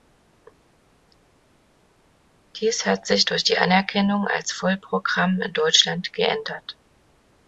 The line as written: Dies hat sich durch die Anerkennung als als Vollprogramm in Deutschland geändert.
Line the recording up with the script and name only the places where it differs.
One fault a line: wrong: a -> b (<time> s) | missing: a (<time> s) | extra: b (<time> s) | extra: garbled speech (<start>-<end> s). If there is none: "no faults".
missing: als (4.5 s)